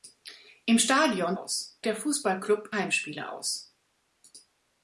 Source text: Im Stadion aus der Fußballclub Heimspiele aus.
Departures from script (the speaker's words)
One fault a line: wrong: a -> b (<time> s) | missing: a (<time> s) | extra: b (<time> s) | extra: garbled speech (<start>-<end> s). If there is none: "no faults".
no faults